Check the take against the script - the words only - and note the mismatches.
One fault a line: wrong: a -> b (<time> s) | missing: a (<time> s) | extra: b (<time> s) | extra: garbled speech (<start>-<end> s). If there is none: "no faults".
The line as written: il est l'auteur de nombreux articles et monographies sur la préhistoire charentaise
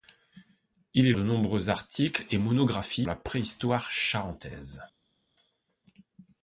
missing: l'auteur (1.1 s)
missing: sur (3.1 s)